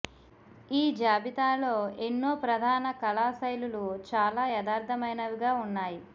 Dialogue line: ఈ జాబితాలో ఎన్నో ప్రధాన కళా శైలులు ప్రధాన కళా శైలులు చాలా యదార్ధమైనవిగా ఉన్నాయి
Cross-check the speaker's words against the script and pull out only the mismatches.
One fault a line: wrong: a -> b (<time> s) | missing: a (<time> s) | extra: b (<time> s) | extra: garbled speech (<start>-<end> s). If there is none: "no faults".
missing: ప్రధాన కళా శైలులు (3.8 s)